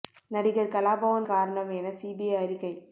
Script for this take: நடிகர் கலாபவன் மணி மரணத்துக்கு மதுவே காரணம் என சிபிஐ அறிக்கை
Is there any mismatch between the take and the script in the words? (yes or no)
yes